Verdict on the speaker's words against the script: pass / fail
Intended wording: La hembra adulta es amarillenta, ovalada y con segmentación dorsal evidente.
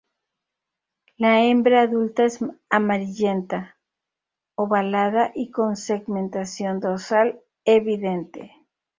pass